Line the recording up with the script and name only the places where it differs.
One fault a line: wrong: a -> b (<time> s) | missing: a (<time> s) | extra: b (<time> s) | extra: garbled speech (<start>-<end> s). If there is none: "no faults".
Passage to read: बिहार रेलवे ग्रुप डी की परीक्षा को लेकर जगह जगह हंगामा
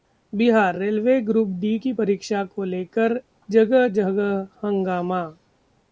no faults